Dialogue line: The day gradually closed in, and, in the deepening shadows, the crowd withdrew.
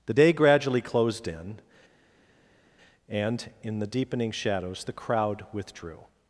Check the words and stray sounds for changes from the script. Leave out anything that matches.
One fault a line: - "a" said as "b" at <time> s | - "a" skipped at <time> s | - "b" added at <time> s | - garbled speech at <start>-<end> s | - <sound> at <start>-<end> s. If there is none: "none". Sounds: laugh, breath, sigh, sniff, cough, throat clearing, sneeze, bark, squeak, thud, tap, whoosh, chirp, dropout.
none